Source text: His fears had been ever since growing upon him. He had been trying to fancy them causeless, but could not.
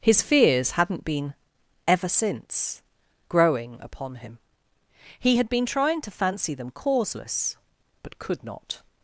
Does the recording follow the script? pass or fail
fail